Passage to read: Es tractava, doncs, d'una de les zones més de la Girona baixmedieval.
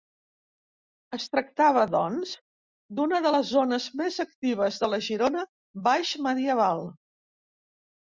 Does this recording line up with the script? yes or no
no